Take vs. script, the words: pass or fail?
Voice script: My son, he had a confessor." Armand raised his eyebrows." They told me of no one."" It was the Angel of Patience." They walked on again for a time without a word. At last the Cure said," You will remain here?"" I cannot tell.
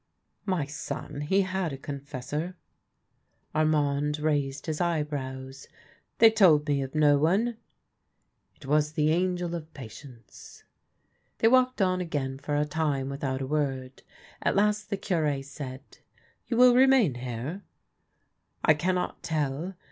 pass